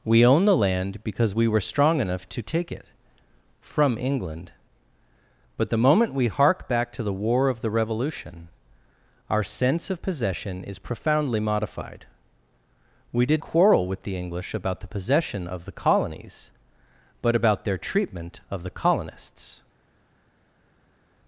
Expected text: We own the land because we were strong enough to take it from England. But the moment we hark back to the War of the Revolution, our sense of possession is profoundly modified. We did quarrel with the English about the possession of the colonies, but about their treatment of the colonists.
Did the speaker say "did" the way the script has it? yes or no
yes